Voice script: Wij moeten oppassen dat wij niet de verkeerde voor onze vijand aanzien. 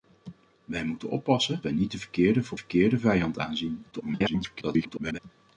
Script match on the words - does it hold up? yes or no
no